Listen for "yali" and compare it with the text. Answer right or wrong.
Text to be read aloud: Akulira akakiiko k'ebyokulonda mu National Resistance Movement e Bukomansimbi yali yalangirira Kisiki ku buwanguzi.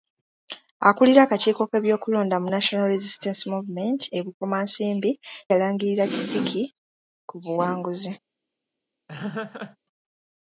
wrong